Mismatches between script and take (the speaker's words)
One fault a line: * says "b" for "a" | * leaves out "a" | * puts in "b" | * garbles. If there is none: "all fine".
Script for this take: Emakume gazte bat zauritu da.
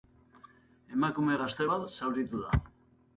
all fine